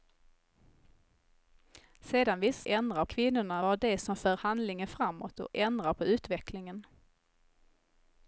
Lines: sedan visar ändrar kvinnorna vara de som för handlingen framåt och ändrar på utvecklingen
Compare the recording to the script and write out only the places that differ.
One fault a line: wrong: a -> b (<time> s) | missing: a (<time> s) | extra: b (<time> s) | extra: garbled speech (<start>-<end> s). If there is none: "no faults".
no faults